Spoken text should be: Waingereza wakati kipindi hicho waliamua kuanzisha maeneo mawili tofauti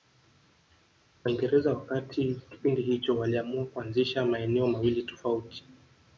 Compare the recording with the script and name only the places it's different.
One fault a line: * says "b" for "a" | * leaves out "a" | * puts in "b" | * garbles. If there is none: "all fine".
all fine